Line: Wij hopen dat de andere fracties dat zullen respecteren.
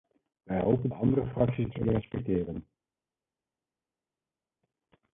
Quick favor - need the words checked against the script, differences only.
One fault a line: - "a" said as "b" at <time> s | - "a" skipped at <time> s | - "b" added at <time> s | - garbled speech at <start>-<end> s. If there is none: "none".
- "dat" skipped at 0.9 s
- "dat" skipped at 1.7 s